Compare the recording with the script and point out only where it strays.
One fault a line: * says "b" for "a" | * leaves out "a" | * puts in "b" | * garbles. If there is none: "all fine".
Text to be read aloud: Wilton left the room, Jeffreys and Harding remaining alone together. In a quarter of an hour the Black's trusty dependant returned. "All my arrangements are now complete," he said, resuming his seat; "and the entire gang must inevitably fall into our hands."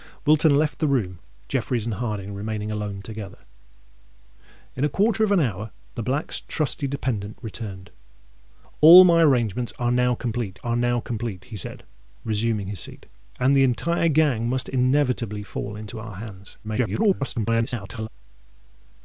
* puts in "are now complete"
* garbles